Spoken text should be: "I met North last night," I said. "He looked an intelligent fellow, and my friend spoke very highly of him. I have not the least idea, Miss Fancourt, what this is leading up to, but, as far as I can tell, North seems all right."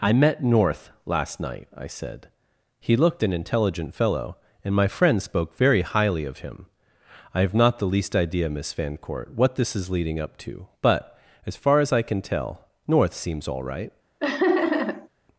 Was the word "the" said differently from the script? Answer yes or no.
no